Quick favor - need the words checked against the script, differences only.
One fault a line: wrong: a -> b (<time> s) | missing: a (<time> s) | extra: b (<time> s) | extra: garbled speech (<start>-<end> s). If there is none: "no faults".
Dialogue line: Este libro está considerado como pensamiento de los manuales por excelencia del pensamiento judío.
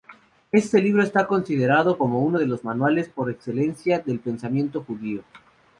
wrong: pensamiento -> uno (2.2 s)